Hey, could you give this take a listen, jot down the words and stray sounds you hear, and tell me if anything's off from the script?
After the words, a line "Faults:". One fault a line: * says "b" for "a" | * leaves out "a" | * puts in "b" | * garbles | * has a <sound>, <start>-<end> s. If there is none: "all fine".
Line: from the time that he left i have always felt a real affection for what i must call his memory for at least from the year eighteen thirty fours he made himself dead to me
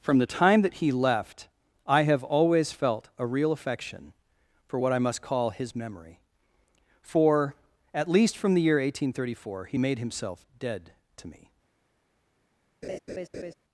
from the time that he left i have always felt a real affection for what i must call his memory for at least from the year eighteen thirty four he made himself dead to me
Faults:
* says "four" for "fours"
* has a laugh, 12.8-13.5 s